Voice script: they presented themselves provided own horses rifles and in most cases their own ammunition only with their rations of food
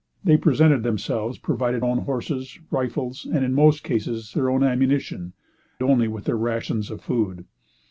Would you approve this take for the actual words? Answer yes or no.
yes